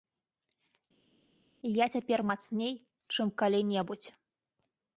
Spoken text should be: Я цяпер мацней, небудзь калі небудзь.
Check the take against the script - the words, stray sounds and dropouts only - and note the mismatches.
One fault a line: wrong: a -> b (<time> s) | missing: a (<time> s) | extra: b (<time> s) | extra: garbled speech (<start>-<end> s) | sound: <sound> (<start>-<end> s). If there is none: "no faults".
wrong: небудзь -> чым (3.2 s)